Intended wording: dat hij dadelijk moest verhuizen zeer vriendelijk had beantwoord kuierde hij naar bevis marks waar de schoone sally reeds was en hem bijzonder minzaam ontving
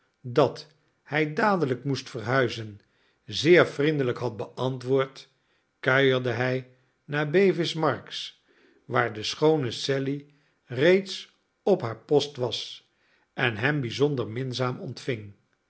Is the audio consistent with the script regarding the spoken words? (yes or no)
no